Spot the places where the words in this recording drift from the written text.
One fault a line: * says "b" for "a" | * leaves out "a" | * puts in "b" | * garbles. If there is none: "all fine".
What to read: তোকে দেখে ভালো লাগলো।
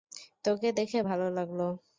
all fine